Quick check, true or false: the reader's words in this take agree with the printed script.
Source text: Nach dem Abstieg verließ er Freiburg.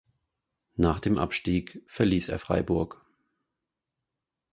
true